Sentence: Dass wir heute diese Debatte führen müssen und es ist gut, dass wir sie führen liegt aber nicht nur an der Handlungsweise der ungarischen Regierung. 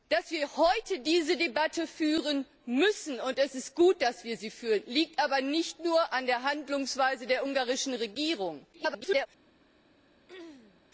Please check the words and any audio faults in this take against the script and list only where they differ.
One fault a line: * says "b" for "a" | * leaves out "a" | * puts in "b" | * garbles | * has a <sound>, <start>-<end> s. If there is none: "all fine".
* garbles
* has a throat clearing, 10.3-10.8 s